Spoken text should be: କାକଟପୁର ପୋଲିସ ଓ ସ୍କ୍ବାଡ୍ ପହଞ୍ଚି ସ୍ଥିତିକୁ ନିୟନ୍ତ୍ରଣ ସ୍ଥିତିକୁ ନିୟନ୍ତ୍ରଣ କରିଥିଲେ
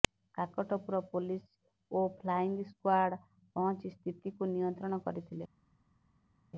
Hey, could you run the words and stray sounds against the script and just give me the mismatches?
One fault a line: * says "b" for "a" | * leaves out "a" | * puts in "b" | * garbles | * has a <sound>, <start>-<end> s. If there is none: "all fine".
* puts in "ଫ୍ଲାଇଙ୍ଗ"
* leaves out "ସ୍ଥିତିକୁ ନିୟନ୍ତ୍ରଣ"